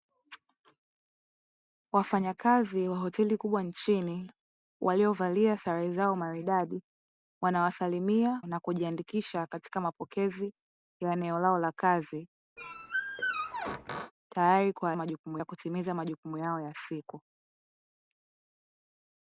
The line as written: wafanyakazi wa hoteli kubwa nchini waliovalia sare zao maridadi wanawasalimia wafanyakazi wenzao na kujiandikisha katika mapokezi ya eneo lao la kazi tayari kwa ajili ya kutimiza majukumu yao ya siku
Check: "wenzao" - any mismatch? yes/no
yes